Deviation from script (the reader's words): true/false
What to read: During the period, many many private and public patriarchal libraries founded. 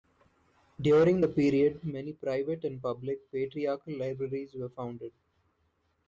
true